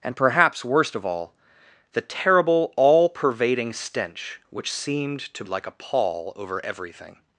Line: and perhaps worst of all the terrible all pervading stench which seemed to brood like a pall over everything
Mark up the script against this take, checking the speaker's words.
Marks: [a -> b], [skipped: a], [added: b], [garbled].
and perhaps worst of all the terrible all pervading stench which seemed to [skipped: brood] like a pall over everything